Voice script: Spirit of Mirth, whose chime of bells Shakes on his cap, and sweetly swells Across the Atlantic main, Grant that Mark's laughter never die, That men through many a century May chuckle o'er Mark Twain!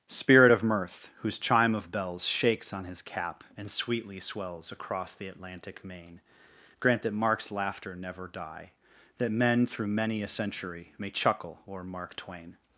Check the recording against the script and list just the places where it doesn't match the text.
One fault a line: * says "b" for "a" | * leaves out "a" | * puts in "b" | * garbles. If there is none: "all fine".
all fine